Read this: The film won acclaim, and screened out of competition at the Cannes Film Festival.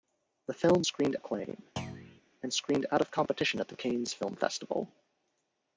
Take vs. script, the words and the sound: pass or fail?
fail